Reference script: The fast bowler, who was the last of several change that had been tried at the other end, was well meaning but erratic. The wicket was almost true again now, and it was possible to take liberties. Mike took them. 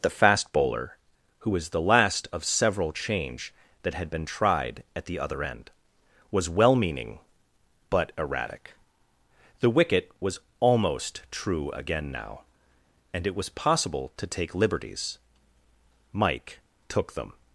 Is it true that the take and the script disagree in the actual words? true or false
false